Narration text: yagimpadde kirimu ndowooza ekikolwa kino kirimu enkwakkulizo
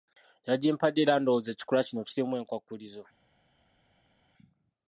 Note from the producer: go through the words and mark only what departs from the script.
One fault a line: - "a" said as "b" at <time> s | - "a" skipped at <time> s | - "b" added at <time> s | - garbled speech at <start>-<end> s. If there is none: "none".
- "kirimu" said as "era" at 1.0 s